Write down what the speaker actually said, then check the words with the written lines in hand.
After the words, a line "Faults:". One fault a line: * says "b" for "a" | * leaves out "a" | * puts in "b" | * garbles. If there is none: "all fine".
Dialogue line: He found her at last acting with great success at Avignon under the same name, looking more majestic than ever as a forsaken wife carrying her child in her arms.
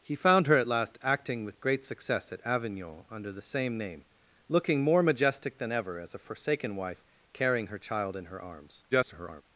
He found her at last acting with great success at Avignon under the same name, looking more majestic than ever as a forsaken wife carrying her child in her arms. [garbled]
Faults:
* garbles